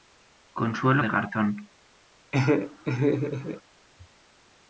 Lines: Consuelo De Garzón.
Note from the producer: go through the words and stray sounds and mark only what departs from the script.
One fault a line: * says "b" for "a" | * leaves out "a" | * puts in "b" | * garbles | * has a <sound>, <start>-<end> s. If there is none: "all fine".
* has a laugh, 2.3-3.6 s